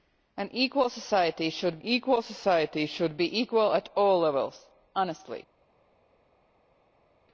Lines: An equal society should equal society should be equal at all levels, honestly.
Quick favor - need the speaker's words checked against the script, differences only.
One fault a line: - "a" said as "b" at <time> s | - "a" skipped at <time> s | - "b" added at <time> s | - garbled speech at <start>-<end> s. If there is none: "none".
none